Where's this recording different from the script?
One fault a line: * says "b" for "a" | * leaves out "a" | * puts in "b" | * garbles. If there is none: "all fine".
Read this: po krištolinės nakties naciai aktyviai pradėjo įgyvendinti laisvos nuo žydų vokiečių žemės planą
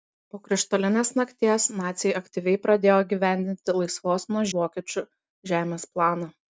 * leaves out "žydų"